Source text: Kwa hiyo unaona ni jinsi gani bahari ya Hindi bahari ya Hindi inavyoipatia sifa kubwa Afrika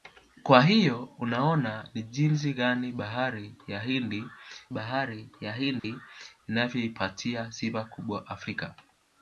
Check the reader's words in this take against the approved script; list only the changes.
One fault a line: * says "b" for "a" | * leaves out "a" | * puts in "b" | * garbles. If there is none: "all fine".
all fine